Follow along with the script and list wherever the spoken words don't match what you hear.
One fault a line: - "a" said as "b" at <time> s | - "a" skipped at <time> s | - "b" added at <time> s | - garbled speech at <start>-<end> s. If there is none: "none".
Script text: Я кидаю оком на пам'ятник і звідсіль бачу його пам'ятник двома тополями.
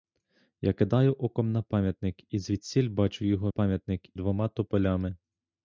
none